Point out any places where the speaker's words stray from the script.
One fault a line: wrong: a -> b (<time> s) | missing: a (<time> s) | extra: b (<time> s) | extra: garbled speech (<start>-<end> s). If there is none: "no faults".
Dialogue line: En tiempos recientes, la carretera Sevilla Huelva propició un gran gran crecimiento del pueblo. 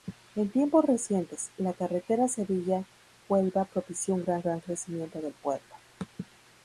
no faults